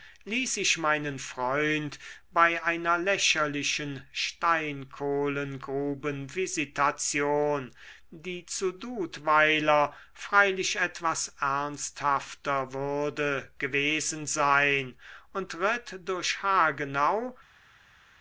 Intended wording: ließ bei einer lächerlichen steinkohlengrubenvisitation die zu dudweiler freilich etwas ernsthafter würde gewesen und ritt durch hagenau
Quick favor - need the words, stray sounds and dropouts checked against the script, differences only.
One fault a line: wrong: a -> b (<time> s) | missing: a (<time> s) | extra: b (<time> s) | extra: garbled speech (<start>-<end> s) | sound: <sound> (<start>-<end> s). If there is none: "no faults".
extra: ich meinen freund (0.6 s)
extra: sein (14.2 s)